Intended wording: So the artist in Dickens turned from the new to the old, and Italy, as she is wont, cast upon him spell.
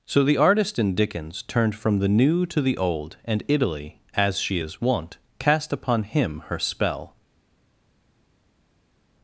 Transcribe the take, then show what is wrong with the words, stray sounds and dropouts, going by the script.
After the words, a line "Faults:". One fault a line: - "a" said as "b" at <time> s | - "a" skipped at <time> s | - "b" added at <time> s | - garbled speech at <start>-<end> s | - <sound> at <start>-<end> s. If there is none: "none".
So the artist in Dickens turned from the new to the old, and Italy, as she is wont, cast upon him her spell.
Faults:
- "her" added at 6.5 s